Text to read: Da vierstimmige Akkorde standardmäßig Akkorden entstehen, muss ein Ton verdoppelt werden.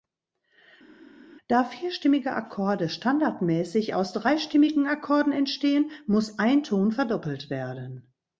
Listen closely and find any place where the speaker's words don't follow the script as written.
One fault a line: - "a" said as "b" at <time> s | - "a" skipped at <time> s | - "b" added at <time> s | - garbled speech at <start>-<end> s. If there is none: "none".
- "aus dreistimmigen" added at 3.9 s